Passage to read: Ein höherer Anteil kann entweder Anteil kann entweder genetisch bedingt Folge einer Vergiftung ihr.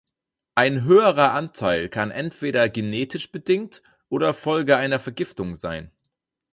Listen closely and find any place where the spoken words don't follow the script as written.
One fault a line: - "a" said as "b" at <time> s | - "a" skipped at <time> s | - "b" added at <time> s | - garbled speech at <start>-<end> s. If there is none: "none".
- "Anteil kann entweder" skipped at 2.7 s
- "oder" added at 4.1 s
- "ihr" said as "sein" at 5.6 s